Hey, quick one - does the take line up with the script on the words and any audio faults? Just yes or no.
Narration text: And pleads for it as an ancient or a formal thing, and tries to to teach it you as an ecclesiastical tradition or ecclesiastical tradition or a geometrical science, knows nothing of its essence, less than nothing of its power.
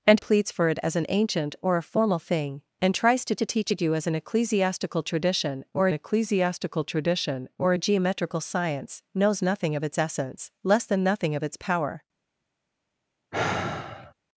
no